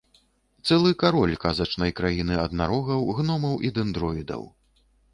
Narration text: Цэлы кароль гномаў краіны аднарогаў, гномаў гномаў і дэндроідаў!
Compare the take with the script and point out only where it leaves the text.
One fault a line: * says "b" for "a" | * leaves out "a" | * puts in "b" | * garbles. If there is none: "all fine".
* says "казачнай" for "гномаў"
* leaves out "гномаў"